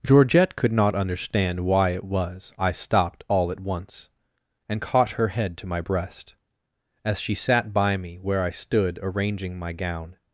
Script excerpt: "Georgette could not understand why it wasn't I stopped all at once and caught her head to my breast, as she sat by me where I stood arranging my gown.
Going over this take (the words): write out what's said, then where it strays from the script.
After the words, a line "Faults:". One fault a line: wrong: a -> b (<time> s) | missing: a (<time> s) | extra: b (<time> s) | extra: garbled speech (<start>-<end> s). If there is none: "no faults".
"Georgette could not understand why it was I stopped all at once and caught her head to my breast, as she sat by me where I stood arranging my gown.
Faults:
wrong: wasn't -> was (2.0 s)